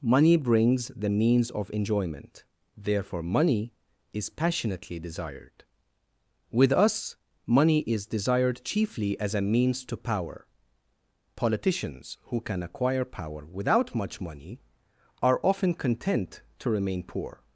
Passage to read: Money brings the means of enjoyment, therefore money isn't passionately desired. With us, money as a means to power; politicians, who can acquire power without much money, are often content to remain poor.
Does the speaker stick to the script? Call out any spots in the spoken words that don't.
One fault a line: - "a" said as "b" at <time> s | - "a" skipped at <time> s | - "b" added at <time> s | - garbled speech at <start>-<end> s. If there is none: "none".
- "isn't" said as "is" at 4.1 s
- "is desired chiefly" added at 7.8 s